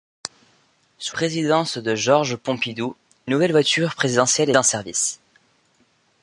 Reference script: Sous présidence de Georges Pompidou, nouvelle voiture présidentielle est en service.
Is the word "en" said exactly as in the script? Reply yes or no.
yes